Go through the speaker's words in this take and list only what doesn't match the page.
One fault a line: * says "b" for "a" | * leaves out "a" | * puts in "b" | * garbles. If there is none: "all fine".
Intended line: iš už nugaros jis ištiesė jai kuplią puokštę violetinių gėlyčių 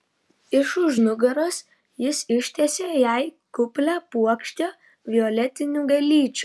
all fine